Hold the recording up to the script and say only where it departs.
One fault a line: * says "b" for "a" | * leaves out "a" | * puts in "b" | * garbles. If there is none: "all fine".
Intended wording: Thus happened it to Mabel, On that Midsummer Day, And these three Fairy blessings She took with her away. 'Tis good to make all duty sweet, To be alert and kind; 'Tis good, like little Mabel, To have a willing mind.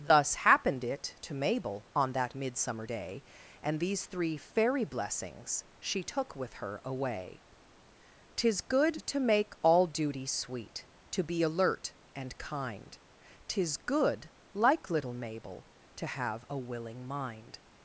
all fine